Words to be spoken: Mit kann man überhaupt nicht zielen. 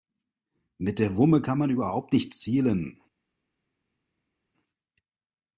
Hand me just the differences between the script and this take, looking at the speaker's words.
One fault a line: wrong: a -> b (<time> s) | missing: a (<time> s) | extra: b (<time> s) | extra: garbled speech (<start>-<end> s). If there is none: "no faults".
extra: der Wumme (1.0 s)